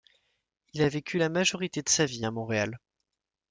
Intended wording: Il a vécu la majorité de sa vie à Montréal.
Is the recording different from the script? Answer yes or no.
no